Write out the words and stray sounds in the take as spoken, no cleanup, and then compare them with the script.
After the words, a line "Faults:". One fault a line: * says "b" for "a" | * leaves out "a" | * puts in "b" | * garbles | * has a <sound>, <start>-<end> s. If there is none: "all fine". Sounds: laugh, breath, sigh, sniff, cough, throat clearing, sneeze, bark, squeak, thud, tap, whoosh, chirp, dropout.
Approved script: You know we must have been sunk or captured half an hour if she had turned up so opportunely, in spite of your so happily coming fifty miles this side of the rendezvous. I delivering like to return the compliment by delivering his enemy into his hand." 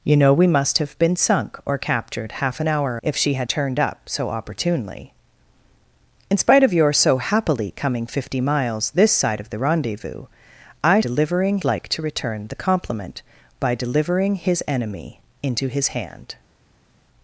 You know we must have been sunk or captured half an hour if she had turned up so opportunely, in spite of your so happily coming fifty miles this side of the rendezvous. I delivering like to return the compliment by delivering his enemy into his hand."
Faults:
all fine